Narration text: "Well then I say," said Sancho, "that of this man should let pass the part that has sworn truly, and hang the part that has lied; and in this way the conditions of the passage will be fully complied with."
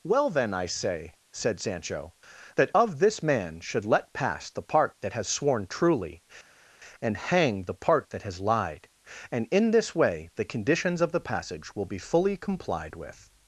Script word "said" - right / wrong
right